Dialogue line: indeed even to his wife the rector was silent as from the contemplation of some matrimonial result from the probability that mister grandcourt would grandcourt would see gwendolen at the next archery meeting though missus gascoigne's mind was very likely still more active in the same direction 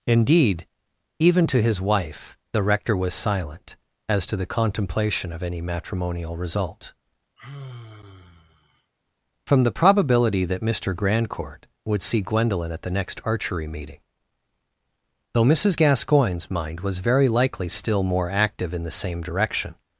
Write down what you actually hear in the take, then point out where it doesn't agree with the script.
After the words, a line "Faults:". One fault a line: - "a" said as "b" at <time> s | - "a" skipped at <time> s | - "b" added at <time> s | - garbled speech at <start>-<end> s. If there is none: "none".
indeed even to his wife the rector was silent as to the contemplation of any matrimonial result from the probability that mister grandcourt would see gwendolen at the next archery meeting though missus gascoigne's mind was very likely still more active in the same direction
Faults:
- "from" said as "to" at 4.2 s
- "some" said as "any" at 5.4 s
- "grandcourt would" skipped at 12.0 s